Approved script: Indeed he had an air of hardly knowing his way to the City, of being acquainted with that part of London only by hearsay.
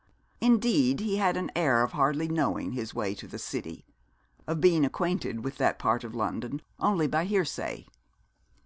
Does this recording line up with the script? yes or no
yes